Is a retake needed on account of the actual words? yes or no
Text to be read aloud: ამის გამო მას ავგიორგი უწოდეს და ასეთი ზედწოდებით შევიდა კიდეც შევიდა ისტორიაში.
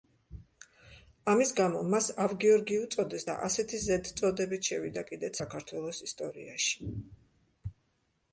yes